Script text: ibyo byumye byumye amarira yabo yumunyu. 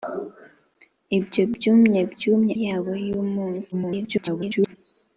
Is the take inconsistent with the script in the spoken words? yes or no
yes